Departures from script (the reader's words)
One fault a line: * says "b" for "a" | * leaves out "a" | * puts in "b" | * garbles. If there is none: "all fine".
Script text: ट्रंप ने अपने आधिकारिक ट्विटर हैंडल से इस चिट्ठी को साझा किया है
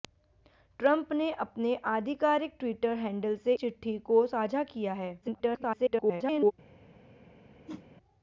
* leaves out "इस"
* garbles